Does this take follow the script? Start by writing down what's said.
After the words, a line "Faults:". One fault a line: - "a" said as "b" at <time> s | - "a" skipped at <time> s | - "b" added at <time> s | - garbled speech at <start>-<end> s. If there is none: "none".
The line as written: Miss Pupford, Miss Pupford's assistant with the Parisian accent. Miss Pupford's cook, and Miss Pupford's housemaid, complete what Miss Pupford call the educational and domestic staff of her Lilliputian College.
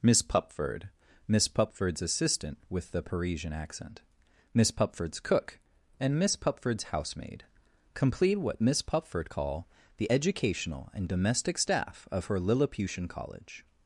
Miss Pupford, Miss Pupford's assistant with the Parisian accent. Miss Pupford's cook, and Miss Pupford's housemaid, complete what Miss Pupford call the educational and domestic staff of her Lilliputian College.
Faults:
none